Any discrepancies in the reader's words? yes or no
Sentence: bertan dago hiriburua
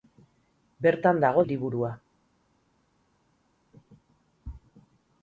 no